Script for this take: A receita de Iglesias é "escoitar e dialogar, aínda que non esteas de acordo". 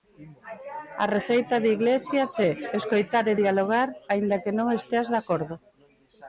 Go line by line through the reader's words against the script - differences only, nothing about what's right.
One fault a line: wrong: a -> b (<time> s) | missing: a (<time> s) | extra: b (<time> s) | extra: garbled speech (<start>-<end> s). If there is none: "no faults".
no faults